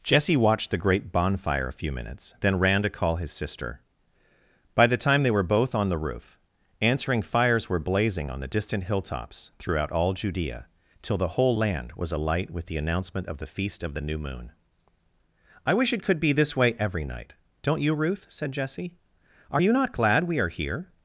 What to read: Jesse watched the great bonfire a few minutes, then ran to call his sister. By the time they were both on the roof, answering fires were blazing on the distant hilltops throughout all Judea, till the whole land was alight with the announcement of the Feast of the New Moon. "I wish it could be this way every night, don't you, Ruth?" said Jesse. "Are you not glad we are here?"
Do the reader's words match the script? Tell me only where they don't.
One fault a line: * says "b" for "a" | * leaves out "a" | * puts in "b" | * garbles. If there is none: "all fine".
all fine